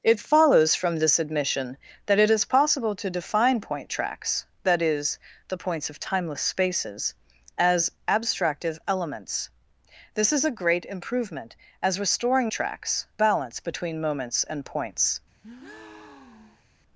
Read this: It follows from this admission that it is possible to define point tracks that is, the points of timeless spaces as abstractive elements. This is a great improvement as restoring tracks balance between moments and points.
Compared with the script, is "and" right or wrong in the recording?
right